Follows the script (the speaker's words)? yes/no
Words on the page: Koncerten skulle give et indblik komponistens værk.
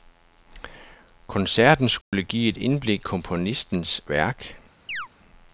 yes